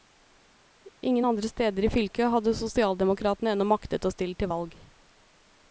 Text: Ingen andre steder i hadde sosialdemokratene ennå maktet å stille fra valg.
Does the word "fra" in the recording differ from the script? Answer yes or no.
yes